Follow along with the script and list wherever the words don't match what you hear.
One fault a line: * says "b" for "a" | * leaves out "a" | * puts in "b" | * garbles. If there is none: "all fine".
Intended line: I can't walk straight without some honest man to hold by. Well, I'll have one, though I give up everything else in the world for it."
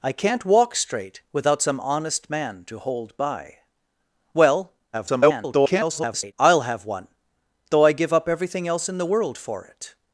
* garbles